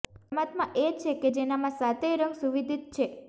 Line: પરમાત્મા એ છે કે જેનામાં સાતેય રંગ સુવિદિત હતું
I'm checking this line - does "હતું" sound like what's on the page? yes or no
no